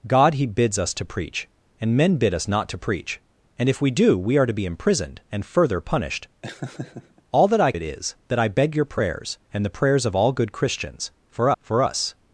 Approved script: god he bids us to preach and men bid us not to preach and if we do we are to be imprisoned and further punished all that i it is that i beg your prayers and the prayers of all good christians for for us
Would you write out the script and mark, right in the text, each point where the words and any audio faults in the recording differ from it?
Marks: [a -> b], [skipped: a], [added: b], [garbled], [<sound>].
god he bids us to preach and men bid us not to preach and if we do we are to be imprisoned and further punished [laugh] all that i it is that i beg your prayers and the prayers of all good christians for for us